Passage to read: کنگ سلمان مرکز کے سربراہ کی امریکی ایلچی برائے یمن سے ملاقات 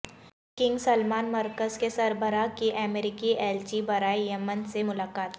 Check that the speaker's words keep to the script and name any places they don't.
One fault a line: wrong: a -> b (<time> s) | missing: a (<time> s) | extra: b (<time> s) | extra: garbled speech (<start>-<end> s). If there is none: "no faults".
no faults